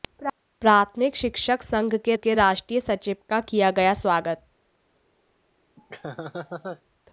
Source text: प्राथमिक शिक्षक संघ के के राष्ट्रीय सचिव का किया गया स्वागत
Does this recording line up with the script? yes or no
yes